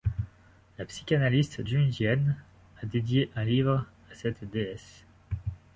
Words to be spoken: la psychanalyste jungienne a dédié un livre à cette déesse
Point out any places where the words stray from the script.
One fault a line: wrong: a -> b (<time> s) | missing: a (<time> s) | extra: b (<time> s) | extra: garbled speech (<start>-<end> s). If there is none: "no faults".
no faults